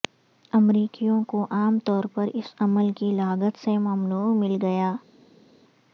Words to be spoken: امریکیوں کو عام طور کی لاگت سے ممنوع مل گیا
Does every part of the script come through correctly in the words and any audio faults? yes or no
no